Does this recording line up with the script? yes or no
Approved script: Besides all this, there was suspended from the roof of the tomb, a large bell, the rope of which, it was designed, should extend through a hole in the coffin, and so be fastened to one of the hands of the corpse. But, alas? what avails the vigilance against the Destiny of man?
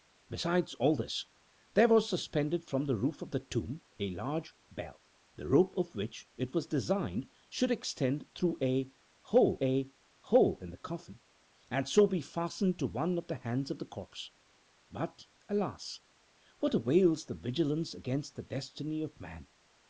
no